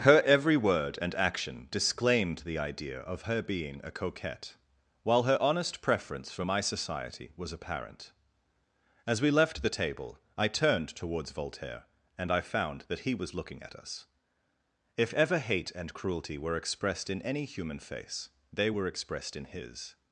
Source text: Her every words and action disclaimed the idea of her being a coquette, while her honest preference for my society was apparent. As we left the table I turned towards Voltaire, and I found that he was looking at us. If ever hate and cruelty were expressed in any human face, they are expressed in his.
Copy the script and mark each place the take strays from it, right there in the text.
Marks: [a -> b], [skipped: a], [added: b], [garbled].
Her every [words -> word] and action disclaimed the idea of her being a coquette, while her honest preference for my society was apparent. As we left the table I turned towards Voltaire, and I found that he was looking at us. If ever hate and cruelty were expressed in any human face, they [are -> were] expressed in his.